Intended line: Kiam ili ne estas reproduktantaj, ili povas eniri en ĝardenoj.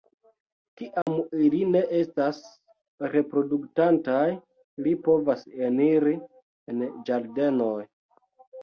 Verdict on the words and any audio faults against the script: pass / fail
fail